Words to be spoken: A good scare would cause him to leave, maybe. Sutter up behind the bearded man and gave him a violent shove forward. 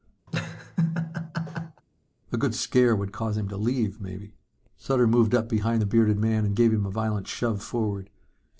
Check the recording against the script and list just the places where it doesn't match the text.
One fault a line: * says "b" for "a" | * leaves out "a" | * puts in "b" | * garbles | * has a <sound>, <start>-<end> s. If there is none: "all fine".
* has a laugh, 0.3-1.8 s
* puts in "moved"